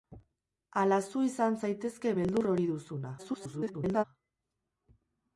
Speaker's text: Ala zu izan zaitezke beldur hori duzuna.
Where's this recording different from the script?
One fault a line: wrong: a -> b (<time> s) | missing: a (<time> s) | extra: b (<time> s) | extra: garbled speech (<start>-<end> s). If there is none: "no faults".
extra: garbled speech (3.2-4.0 s)